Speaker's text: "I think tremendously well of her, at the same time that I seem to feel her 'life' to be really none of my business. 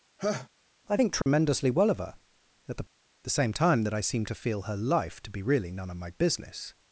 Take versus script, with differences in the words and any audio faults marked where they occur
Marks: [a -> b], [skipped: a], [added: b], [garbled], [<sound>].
[laugh] "I think tremendously [dropout] well of her, at the [added: the] same time that I seem to feel her 'life' to be really none of my business.